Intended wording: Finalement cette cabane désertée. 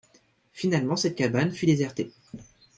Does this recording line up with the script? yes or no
no